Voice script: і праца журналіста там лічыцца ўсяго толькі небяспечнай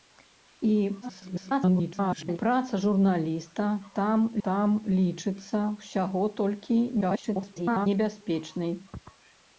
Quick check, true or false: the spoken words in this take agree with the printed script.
false